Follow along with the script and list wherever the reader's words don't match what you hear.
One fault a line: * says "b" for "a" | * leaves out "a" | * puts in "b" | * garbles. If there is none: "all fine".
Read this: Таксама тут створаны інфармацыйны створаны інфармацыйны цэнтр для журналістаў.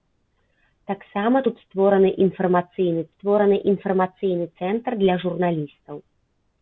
all fine